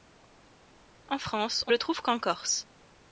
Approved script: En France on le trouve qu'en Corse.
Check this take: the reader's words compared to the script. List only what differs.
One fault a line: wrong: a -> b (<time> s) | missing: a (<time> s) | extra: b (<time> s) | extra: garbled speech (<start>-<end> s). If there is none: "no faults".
no faults